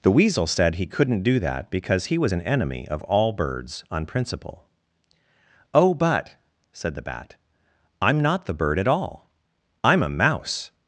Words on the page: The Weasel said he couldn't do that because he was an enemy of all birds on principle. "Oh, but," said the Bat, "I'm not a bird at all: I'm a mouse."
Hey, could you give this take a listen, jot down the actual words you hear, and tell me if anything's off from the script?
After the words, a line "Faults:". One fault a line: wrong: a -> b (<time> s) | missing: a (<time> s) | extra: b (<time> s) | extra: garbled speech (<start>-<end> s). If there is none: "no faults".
The Weasel said he couldn't do that because he was an enemy of all birds on principle. "Oh, but," said the Bat, "I'm not the bird at all: I'm a mouse."
Faults:
wrong: a -> the (8.4 s)